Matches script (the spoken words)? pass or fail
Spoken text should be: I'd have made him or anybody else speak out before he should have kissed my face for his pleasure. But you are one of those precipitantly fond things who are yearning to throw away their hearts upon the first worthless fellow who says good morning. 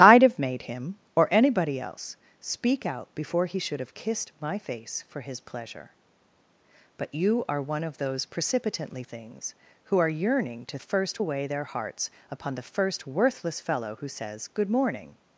fail